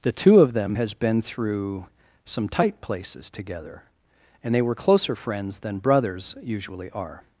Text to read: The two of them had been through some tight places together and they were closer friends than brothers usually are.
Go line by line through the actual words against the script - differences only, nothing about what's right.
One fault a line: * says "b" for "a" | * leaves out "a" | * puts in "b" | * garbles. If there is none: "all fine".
* says "has" for "had"